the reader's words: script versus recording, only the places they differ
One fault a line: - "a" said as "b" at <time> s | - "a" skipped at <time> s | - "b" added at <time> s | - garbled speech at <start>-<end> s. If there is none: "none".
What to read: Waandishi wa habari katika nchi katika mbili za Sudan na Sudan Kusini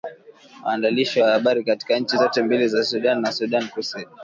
- "katika" said as "zote" at 2.1 s